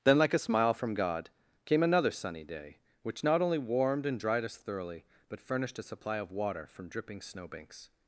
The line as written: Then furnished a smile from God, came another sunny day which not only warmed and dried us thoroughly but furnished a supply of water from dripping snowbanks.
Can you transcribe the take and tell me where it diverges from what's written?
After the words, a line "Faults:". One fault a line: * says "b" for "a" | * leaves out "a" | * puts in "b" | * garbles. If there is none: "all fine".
Then like a smile from God, came another sunny day which not only warmed and dried us thoroughly but furnished a supply of water from dripping snowbanks.
Faults:
* says "like" for "furnished"